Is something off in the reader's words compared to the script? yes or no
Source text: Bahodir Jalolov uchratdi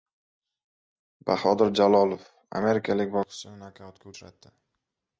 yes